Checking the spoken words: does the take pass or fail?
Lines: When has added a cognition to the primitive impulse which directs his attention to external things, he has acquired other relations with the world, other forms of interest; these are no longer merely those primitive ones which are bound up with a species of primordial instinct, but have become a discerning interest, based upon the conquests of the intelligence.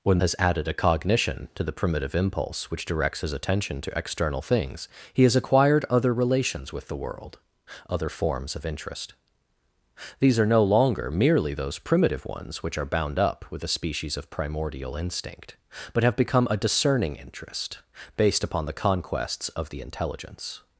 pass